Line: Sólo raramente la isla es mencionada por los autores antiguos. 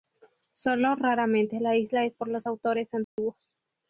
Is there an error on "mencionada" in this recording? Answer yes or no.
yes